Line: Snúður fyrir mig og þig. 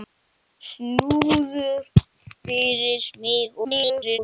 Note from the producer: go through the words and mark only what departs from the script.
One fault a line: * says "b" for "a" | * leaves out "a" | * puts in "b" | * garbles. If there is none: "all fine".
* garbles